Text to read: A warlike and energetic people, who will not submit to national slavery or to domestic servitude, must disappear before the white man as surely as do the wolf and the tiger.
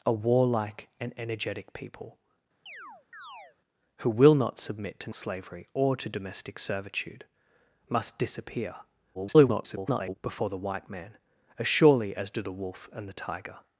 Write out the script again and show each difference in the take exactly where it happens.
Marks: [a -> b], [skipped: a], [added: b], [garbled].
A warlike and energetic people, who will not submit to [skipped: national] slavery or to domestic servitude, must disappear [garbled] before the white man as surely as do the wolf and the tiger.